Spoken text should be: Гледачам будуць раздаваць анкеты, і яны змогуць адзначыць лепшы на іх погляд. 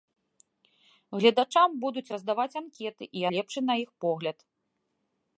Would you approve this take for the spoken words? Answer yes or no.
no